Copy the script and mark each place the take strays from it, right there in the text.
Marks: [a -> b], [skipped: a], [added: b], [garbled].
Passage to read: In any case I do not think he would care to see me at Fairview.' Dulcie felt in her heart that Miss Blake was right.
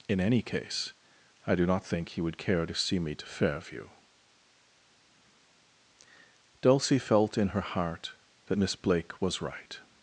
In any case I do not think he would care to see me [at -> to] Fairview.' Dulcie felt in her heart that Miss Blake was right.